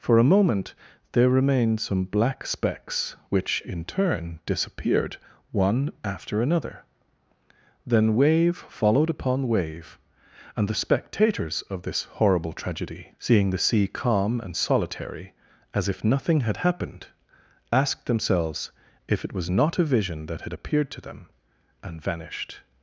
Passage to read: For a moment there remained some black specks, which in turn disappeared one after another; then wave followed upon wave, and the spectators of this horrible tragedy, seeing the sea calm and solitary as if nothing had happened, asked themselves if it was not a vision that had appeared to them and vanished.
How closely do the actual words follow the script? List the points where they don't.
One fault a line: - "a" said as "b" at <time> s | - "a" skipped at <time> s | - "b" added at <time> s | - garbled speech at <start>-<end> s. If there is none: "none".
none